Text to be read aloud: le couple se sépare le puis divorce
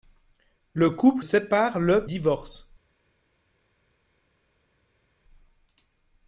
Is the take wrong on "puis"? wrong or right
wrong